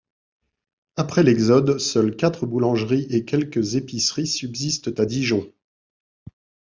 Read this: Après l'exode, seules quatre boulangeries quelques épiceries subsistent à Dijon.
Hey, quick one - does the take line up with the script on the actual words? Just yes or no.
no